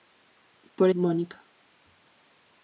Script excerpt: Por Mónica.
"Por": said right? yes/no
yes